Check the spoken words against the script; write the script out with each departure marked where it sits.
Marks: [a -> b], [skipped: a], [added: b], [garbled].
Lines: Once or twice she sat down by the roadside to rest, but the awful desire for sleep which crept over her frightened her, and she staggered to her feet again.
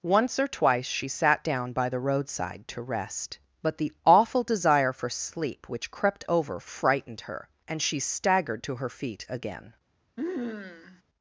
Once or twice she sat down by the roadside to rest, but the awful desire for sleep which crept over [skipped: her] frightened her, and she staggered to her feet again.